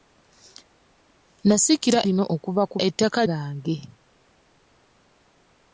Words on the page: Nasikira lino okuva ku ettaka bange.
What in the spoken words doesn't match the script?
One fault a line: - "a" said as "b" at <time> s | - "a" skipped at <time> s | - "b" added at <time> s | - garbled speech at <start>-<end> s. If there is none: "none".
none